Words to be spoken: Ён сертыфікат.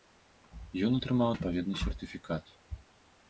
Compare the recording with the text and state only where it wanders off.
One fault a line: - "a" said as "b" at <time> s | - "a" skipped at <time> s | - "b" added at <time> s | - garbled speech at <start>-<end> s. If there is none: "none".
- "атрымаў адпаведны" added at 1.0 s